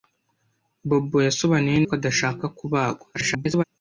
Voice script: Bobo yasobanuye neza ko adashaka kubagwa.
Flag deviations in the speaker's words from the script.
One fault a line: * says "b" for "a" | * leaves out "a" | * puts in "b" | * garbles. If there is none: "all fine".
* leaves out "neza"
* garbles